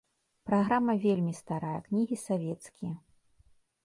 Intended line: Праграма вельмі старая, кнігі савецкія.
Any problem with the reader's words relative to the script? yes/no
no